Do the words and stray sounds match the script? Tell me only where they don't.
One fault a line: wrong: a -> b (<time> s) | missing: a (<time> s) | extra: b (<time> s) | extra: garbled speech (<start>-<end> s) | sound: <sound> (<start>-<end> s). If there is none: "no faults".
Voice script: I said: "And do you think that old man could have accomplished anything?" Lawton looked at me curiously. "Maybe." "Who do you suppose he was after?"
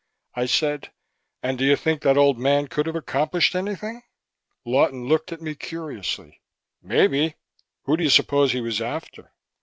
no faults